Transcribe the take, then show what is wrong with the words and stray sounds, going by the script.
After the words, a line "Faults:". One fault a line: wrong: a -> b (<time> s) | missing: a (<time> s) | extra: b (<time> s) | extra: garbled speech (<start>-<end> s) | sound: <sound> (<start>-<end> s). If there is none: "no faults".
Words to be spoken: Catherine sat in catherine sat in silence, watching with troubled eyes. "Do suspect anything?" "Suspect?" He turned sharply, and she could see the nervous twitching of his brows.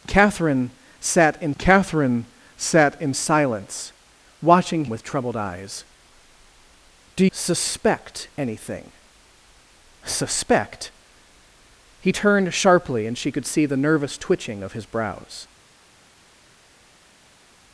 Catherine sat in catherine sat in silence, watching with troubled eyes. "Do suspect anything?" "Suspect?" He turned sharply, and she could see the nervous twitching of his brows.
Faults:
no faults